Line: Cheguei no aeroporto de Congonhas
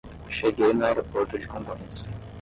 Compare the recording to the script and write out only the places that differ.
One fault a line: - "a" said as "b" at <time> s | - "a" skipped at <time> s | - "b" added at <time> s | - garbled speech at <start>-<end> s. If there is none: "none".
none